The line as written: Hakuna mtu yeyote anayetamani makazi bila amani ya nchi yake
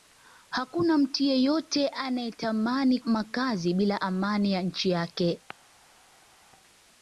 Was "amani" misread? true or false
false